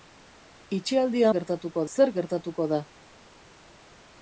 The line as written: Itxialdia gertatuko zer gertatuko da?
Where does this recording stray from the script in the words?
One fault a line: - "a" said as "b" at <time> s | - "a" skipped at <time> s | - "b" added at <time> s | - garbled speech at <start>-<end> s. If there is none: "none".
none